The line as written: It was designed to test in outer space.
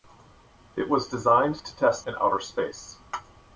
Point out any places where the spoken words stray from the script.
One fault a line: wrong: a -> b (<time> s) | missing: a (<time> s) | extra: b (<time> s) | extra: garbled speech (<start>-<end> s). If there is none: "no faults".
no faults